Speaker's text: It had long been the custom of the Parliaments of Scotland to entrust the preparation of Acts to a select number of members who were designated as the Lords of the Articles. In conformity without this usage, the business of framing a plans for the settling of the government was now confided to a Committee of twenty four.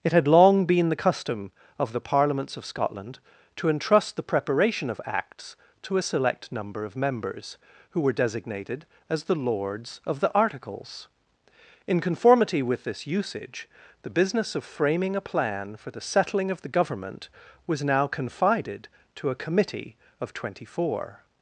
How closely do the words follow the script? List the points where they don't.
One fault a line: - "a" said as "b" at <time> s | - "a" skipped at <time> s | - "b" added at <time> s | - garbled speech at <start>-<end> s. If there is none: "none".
- "without" said as "with" at 12.6 s
- "plans" said as "plan" at 15.2 s